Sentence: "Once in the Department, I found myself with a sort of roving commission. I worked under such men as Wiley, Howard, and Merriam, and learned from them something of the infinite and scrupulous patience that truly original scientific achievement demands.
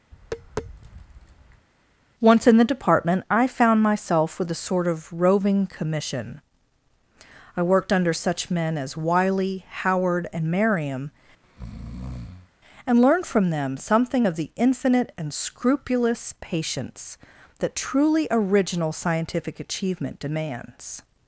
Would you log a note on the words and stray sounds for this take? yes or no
yes